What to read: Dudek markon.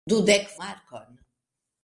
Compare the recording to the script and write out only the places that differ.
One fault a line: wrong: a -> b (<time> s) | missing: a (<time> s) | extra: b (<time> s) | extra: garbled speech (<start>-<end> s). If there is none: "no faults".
no faults